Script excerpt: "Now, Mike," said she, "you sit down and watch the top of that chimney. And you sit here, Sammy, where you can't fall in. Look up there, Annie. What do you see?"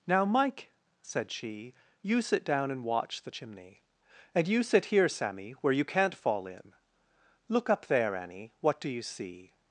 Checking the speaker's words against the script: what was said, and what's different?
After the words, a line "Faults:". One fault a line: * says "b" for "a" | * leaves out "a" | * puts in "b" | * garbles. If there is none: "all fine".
"Now, Mike," said she, "you sit down and watch the chimney. And you sit here, Sammy, where you can't fall in. Look up there, Annie. What do you see?"
Faults:
* leaves out "top of that"